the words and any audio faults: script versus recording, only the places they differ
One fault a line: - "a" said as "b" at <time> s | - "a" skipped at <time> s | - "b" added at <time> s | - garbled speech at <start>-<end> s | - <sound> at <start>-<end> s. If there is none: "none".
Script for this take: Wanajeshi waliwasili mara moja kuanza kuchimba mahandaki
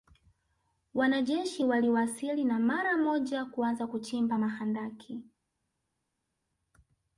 - "na" added at 2.4 s